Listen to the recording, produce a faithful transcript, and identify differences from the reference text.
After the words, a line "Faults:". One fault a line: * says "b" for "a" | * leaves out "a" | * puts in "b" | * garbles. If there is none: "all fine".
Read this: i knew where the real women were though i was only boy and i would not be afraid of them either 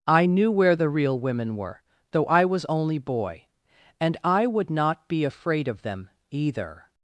i knew where the real women were though i was only boy and i would not be afraid of them either
Faults:
all fine